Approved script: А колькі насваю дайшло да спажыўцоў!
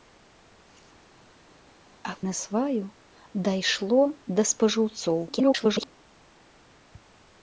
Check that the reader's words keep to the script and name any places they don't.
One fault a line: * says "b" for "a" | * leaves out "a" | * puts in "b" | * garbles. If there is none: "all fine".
* leaves out "колькі"
* garbles